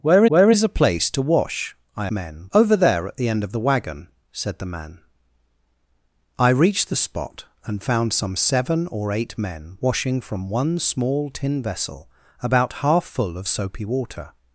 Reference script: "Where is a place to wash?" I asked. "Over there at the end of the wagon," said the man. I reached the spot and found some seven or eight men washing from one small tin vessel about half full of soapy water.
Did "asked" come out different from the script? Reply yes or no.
yes